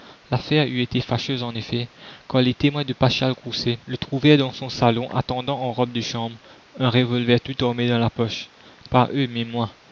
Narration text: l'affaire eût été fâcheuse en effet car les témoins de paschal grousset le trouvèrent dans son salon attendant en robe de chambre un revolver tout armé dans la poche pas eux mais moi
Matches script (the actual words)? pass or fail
pass